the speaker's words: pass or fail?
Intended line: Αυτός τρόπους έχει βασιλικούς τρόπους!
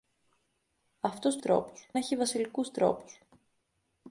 pass